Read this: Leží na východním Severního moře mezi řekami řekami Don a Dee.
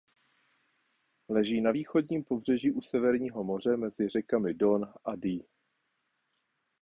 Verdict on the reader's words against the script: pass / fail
fail